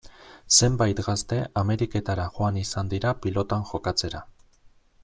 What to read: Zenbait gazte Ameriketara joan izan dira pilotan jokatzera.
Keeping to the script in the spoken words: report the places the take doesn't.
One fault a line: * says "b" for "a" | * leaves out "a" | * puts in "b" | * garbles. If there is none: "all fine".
all fine